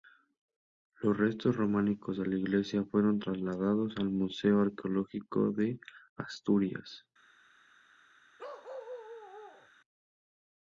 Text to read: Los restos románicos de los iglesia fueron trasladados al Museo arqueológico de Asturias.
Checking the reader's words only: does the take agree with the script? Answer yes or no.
no